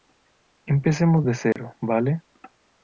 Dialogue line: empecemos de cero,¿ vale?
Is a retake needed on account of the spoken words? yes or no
no